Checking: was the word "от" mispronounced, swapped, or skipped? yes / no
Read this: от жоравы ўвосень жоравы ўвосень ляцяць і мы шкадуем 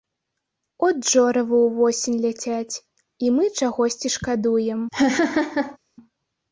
no